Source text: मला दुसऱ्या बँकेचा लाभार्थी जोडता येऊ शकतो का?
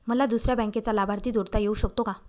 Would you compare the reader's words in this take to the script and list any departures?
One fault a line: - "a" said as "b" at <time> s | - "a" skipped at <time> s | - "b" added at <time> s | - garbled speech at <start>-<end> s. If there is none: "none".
none